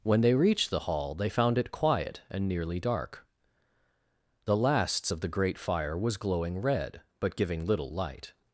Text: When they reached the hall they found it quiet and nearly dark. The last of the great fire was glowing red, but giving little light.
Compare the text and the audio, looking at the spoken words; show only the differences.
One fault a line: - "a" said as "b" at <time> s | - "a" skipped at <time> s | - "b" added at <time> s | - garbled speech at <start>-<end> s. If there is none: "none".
- "last" said as "lasts" at 4.6 s